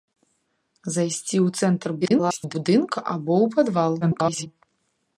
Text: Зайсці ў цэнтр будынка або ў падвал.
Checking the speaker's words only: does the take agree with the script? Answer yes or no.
no